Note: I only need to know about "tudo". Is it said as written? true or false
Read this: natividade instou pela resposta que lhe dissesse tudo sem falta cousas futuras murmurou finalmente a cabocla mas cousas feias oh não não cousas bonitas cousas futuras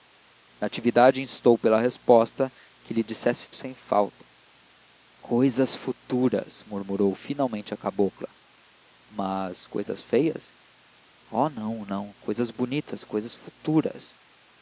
false